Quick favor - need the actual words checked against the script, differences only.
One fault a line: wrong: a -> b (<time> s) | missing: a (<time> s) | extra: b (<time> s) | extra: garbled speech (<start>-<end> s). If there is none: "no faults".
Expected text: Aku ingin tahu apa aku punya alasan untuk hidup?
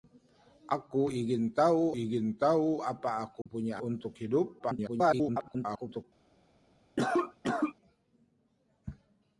extra: ingin tahu (2.0 s)
missing: alasan (3.8 s)
extra: garbled speech (4.6-6.0 s)